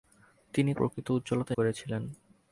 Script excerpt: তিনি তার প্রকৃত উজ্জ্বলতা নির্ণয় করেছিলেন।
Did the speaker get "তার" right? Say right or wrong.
wrong